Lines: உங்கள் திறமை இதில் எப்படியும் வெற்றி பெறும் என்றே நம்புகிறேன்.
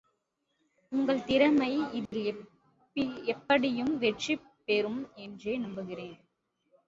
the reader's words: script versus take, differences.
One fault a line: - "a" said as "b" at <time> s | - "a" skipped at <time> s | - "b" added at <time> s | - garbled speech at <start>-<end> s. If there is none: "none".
none